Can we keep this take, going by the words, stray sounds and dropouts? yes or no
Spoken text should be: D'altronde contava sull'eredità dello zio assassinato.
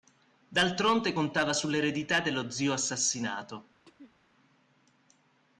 no